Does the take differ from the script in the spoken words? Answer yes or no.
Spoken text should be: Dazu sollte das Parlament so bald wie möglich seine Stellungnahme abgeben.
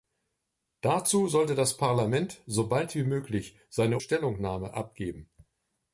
no